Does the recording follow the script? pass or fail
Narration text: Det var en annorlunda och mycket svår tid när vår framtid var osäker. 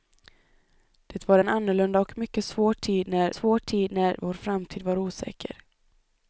fail